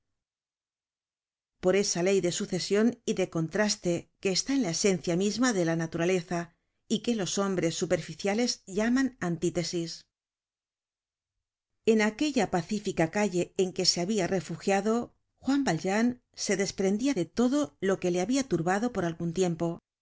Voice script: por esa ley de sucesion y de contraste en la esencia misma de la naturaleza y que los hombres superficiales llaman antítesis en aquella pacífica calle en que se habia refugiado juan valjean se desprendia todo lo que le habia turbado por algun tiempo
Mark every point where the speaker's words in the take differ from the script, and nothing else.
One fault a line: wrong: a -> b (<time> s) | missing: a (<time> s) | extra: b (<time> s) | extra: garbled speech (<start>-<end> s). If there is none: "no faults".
extra: que está (4.2 s)
extra: de (17.1 s)